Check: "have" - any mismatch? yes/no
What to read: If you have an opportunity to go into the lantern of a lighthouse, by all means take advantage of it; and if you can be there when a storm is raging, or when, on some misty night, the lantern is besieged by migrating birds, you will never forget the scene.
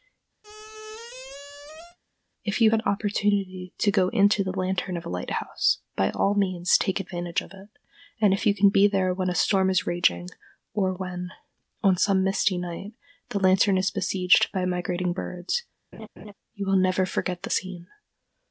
yes